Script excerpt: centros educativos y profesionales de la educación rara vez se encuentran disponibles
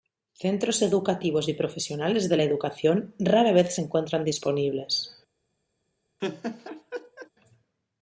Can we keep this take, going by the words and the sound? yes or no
no